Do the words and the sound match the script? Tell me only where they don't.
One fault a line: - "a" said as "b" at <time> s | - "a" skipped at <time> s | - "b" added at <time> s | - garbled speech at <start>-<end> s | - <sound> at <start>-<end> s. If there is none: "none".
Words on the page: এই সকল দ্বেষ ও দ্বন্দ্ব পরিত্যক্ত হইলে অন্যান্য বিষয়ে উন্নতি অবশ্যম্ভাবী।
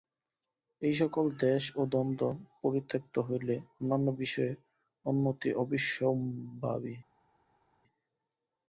none